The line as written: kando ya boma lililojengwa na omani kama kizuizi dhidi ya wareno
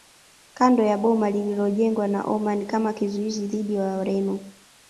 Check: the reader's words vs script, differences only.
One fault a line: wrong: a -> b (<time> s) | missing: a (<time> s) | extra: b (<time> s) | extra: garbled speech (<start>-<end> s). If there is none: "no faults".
no faults